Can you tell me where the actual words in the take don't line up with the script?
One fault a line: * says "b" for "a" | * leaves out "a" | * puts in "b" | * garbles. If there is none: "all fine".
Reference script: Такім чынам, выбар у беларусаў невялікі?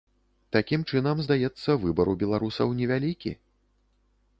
* puts in "здаецца"